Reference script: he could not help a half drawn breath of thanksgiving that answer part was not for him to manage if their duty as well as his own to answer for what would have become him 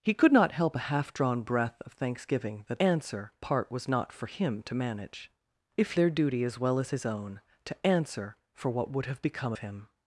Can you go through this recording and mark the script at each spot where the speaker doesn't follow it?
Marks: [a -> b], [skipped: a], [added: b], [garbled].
he could not help a half drawn breath of thanksgiving that answer part was not for him to manage if their duty as well as his own to answer for what would have become him